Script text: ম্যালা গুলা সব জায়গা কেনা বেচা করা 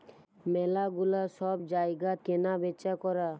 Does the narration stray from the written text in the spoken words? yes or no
no